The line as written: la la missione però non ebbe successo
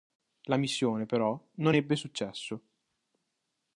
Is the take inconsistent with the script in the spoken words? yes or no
yes